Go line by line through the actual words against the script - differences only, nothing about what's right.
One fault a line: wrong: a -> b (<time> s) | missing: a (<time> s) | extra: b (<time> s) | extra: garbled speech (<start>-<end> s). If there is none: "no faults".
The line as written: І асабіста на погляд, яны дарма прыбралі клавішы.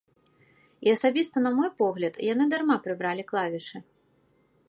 extra: мой (1.6 s)